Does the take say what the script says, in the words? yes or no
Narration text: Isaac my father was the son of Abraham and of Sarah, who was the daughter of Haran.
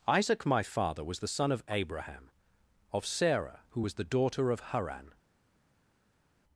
no